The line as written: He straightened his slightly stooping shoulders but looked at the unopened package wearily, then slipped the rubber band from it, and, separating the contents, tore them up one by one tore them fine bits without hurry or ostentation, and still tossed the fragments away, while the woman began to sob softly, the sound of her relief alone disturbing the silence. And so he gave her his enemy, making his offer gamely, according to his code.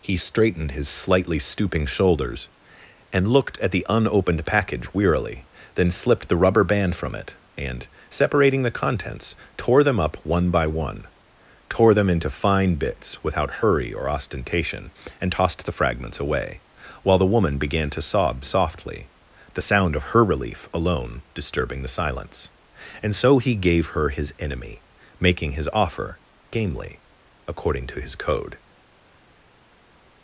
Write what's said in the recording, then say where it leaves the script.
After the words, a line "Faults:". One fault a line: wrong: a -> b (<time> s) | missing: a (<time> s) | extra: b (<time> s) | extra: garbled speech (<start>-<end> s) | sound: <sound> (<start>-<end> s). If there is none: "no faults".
He straightened his slightly stooping shoulders and looked at the unopened package wearily, then slipped the rubber band from it, and, separating the contents, tore them up one by one tore them into fine bits without hurry or ostentation, and tossed the fragments away, while the woman began to sob softly, the sound of her relief alone disturbing the silence. And so he gave her his enemy, making his offer gamely, according to his code.
Faults:
wrong: but -> and (3.1 s)
extra: into (12.1 s)
missing: still (15.3 s)